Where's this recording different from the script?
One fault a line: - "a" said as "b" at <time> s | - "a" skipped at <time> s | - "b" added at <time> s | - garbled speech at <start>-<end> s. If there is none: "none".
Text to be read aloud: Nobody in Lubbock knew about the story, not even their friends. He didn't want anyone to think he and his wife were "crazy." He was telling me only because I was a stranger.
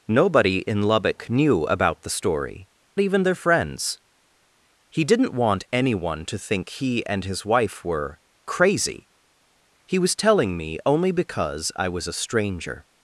- "not" skipped at 2.7 s